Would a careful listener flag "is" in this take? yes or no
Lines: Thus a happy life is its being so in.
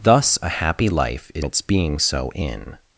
no